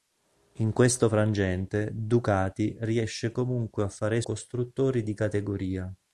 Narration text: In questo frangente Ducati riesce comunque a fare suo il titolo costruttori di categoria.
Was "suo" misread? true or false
true